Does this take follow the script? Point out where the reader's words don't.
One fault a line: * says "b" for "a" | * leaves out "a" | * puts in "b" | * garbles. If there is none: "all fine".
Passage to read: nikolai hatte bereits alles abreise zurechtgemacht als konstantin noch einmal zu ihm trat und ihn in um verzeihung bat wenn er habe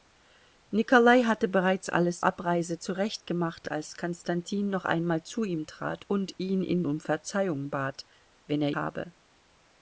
all fine